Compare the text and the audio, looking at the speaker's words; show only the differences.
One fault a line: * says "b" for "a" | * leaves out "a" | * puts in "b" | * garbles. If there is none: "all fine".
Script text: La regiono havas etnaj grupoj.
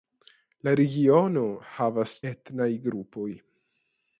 all fine